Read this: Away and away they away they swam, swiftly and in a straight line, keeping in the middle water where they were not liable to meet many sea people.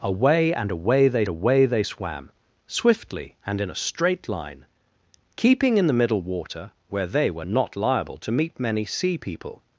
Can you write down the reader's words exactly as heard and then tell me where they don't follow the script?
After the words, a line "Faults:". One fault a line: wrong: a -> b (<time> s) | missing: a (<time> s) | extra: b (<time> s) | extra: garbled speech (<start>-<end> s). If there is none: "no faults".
Away and away they away they swam, swiftly and in a straight line, keeping in the middle water where they were not liable to meet many sea people.
Faults:
no faults